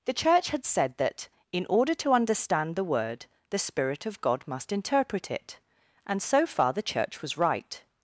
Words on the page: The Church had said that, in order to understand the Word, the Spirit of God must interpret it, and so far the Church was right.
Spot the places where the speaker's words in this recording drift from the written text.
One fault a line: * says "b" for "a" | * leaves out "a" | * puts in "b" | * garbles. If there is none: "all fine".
all fine